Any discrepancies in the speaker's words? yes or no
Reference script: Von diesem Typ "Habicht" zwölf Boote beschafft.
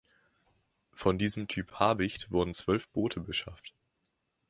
yes